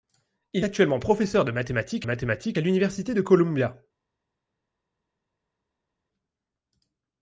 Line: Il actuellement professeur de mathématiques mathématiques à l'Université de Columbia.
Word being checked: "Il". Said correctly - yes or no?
yes